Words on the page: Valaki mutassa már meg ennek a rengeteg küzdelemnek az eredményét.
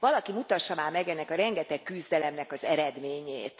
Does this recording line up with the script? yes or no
yes